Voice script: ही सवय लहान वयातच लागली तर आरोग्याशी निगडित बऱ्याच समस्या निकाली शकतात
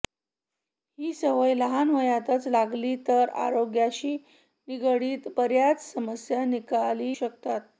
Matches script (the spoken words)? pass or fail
pass